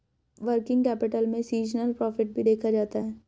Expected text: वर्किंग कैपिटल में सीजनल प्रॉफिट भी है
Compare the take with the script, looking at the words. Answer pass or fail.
fail